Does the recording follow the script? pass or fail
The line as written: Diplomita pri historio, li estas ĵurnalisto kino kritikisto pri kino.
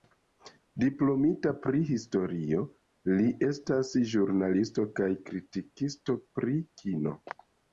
fail